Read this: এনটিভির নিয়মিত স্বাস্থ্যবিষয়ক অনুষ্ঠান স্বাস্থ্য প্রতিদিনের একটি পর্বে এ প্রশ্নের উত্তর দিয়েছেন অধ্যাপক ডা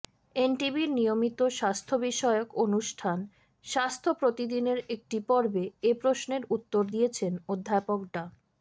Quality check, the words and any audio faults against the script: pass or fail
pass